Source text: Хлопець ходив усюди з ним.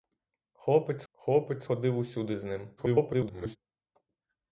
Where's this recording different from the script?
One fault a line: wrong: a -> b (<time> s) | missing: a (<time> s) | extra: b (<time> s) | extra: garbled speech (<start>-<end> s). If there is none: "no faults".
extra: хлопець (1.1 s)
extra: garbled speech (2.8-3.6 s)